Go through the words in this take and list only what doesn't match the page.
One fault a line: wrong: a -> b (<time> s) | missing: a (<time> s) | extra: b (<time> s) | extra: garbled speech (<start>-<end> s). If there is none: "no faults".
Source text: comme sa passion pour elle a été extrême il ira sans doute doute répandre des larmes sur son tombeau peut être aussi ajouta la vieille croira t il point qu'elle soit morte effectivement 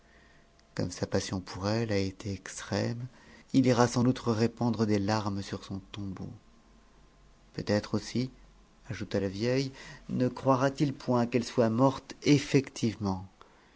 missing: doute (4.2 s)
extra: ne (10.1 s)